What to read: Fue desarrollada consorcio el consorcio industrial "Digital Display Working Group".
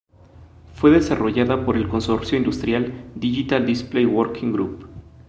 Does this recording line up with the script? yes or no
no